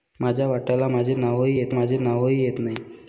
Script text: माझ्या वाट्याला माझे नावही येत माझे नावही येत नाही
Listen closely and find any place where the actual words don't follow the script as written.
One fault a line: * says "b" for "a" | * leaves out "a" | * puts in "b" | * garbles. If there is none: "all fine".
all fine